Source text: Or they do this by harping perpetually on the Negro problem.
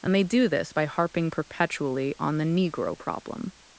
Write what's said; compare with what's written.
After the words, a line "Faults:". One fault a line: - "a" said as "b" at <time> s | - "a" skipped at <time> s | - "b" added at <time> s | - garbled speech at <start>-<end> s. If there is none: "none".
And they do this by harping perpetually on the Negro problem.
Faults:
- "Or" said as "And" at 0.0 s